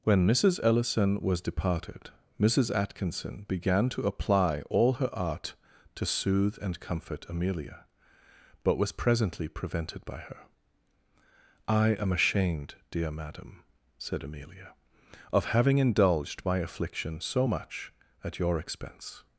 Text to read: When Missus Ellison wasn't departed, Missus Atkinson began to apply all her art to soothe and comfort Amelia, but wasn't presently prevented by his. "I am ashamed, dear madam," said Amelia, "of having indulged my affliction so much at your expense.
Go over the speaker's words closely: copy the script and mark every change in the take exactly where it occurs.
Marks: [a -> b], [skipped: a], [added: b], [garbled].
When Missus Ellison [wasn't -> was] departed, Missus Atkinson began to apply all her art to soothe and comfort Amelia, but [wasn't -> was] presently prevented by [his. -> her] "I am ashamed, dear madam," said Amelia, "of having indulged my affliction so much at your expense.